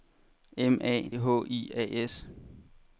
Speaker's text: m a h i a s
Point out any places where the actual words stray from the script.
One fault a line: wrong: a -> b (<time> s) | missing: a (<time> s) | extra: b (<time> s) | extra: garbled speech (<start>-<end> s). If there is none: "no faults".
no faults